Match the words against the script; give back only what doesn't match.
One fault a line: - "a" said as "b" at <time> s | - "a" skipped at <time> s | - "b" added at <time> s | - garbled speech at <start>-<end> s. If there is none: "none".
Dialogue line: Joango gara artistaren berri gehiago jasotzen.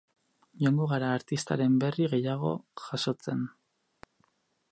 none